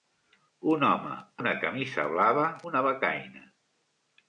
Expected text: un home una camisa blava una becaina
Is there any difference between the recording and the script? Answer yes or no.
no